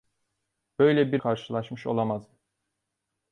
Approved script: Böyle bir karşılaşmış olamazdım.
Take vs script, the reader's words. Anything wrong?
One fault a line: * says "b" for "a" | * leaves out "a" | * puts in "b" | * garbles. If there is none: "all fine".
all fine